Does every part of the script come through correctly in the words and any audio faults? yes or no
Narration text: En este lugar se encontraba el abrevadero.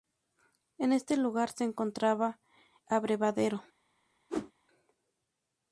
no